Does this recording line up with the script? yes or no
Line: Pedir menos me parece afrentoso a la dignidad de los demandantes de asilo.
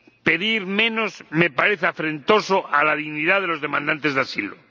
yes